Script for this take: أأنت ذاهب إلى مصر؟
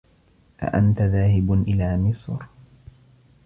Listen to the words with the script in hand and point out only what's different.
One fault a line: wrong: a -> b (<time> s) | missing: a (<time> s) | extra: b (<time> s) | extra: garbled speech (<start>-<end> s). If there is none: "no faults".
no faults